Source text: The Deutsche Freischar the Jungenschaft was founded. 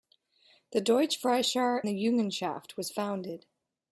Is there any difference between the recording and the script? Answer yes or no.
no